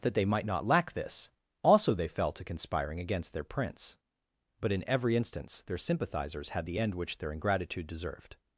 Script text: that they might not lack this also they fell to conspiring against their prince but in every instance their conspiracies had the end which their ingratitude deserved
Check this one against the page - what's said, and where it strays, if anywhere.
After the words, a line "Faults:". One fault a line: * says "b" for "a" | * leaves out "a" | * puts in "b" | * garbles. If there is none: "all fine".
that they might not lack this also they fell to conspiring against their prince but in every instance their sympathizers had the end which their ingratitude deserved
Faults:
* says "sympathizers" for "conspiracies"